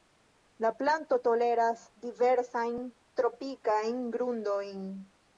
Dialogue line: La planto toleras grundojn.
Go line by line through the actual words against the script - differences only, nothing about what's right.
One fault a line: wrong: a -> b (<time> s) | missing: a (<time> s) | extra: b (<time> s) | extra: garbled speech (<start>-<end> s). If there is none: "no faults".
extra: diversajn tropikajn (2.0 s)